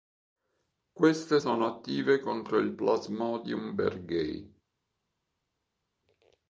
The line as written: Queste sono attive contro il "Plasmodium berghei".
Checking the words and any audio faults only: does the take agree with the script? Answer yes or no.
yes